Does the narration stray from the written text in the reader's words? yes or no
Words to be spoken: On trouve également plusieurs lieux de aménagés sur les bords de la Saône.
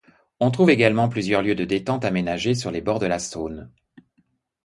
yes